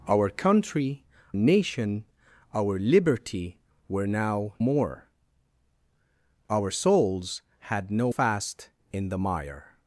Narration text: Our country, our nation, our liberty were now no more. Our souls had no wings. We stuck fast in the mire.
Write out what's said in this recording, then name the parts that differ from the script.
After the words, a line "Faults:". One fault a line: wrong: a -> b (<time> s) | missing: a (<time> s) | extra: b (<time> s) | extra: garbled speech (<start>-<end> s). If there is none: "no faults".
Our country, nation, our liberty were now more. Our souls had no fast in the mire.
Faults:
missing: our (1.1 s)
missing: no (4.5 s)
missing: wings We stuck (8.1 s)